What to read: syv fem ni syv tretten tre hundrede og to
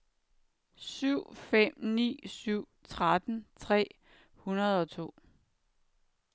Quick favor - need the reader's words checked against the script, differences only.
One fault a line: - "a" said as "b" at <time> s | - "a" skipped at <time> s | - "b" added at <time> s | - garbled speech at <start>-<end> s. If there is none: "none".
none